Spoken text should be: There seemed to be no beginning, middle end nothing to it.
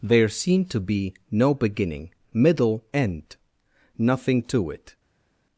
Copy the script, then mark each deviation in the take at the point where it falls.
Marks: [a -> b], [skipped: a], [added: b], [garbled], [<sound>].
There seemed to be no beginning, middle end nothing to it.